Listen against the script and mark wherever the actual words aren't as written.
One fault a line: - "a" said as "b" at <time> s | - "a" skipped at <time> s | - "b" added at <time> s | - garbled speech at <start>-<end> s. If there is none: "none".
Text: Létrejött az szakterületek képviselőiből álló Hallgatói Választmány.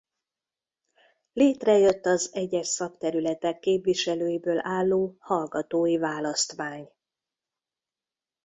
- "egyes" added at 2.3 s